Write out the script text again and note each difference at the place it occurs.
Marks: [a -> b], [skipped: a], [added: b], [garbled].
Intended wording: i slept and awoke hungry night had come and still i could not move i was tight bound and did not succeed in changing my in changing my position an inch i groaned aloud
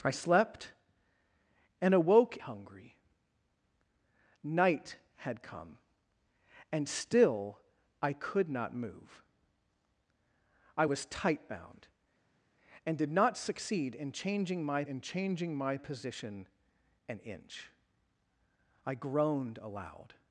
i slept and awoke hungry night had come and still i could not move i was tight bound and did not succeed in changing my in changing my position an inch i groaned aloud